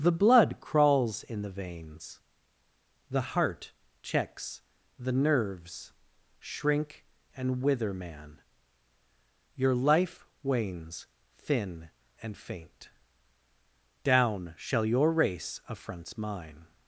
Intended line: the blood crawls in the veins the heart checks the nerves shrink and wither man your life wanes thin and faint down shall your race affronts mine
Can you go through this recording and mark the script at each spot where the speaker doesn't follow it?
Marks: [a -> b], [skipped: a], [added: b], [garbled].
the blood crawls in the veins the heart checks the nerves shrink and wither man your life wanes thin and faint down shall your race affronts mine